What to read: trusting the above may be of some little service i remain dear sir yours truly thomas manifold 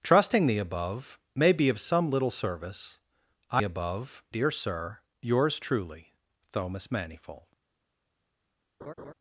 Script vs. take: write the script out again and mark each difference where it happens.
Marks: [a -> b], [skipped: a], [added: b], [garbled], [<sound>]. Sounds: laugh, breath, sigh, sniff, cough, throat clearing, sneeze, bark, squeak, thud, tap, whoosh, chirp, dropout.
trusting the above may be of some little service i [remain -> above] dear sir yours truly thomas manifold [laugh]